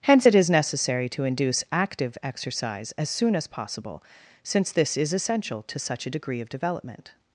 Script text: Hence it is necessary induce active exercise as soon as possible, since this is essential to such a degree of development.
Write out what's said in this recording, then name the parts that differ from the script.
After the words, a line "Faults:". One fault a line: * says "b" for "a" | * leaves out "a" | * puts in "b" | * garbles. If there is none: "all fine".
Hence it is necessary to induce active exercise as soon as possible, since this is essential to such a degree of development.
Faults:
* puts in "to"